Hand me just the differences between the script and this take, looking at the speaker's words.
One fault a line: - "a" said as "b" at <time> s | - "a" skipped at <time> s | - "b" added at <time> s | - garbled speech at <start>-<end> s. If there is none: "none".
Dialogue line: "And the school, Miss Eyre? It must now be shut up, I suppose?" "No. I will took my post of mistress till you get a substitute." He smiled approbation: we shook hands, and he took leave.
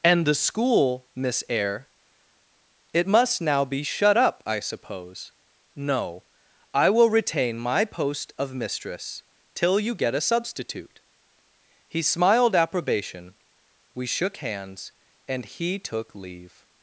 - "took" said as "retain" at 7.1 s